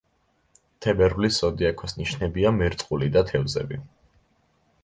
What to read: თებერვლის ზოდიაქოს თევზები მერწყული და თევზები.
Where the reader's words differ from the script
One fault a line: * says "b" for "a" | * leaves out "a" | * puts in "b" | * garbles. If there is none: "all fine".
* says "ნიშნებია" for "თევზები"